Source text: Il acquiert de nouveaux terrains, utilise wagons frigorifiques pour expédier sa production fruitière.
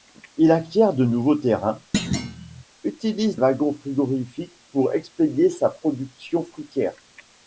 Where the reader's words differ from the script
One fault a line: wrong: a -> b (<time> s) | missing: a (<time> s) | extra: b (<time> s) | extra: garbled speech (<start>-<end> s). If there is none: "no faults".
no faults